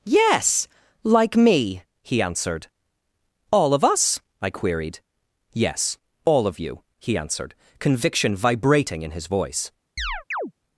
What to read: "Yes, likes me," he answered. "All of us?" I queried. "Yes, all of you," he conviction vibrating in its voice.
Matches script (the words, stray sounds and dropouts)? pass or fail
fail